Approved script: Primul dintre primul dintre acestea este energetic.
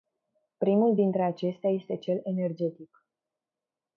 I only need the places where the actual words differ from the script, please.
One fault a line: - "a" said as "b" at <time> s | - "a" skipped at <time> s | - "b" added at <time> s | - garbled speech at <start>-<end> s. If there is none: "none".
- "primul dintre" skipped at 1.2 s
- "cel" added at 2.0 s